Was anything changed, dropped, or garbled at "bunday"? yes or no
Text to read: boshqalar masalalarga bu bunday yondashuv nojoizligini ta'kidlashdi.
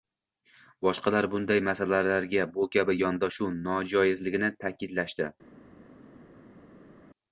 yes